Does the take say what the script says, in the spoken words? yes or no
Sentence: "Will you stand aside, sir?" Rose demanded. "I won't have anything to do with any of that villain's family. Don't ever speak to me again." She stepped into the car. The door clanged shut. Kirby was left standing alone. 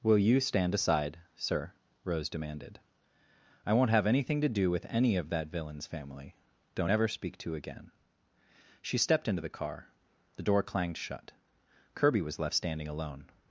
no